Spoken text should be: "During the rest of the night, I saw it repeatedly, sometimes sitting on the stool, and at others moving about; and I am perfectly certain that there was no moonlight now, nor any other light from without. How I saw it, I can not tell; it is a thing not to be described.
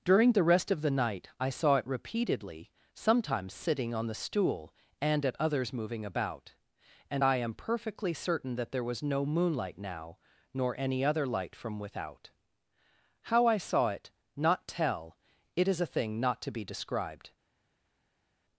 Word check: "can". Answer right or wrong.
wrong